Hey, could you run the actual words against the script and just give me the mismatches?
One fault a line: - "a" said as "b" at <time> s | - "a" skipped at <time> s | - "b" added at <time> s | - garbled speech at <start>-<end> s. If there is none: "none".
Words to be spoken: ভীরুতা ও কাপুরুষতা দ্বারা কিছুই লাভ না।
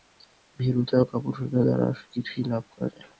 - "করা যায়" added at 2.7 s